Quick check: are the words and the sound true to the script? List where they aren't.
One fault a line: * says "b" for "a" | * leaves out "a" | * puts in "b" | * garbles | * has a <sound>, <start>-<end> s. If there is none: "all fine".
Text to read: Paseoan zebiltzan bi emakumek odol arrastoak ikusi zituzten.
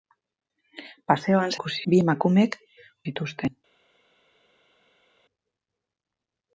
* says "ikusi" for "zebiltzan"
* leaves out "odol arrastoak ikusi"